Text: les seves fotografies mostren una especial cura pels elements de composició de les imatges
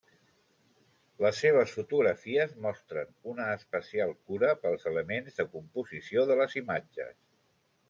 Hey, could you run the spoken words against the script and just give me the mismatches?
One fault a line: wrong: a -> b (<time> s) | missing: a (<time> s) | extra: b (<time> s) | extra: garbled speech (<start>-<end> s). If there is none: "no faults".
no faults